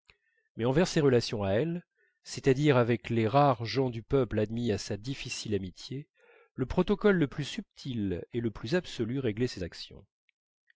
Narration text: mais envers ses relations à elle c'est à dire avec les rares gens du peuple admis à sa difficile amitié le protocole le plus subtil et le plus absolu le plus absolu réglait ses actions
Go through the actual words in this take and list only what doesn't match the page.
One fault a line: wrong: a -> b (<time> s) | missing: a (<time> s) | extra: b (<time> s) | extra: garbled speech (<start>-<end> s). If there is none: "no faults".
missing: le plus absolu (9.2 s)